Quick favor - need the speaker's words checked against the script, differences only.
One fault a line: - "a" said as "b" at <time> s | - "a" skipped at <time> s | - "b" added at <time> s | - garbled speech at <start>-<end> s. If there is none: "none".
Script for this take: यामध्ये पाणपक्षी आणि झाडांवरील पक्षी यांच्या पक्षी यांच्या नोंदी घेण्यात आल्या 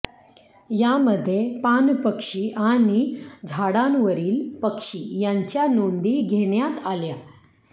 - "पक्षी यांच्या" skipped at 5.7 s